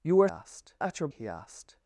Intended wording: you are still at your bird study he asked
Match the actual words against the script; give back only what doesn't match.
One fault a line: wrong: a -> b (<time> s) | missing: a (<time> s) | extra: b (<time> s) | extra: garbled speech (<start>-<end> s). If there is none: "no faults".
wrong: still -> asked (0.3 s)
missing: bird study (1.1 s)